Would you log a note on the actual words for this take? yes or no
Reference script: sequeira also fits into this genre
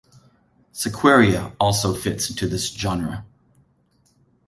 no